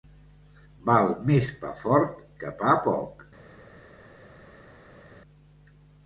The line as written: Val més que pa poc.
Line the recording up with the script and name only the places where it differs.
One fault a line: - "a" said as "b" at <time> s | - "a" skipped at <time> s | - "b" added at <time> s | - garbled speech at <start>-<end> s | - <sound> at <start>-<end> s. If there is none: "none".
- "pa fort" added at 1.6 s